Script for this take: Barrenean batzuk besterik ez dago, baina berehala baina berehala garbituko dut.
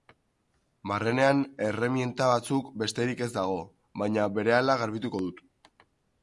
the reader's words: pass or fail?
fail